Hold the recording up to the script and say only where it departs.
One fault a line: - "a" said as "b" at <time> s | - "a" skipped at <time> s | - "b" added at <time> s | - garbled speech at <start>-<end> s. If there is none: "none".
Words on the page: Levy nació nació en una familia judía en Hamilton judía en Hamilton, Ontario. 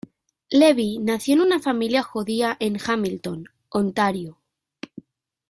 - "nació" skipped at 1.4 s
- "judía en Hamilton" skipped at 3.5 s